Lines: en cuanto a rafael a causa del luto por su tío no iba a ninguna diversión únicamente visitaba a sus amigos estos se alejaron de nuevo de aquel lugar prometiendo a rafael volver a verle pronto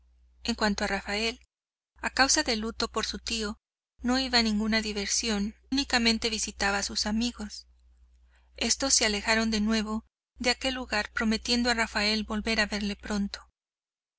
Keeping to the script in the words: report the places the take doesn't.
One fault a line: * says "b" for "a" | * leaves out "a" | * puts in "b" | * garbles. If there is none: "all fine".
all fine